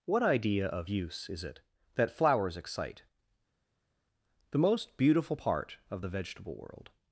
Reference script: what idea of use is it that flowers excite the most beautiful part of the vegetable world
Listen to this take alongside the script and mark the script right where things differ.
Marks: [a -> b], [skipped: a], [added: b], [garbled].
what idea of use is it that flowers excite the most beautiful part of the vegetable world